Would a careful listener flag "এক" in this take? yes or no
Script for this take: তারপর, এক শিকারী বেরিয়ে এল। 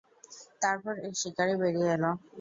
no